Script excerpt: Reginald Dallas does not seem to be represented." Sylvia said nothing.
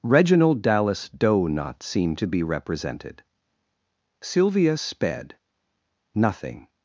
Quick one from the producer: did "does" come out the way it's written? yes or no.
no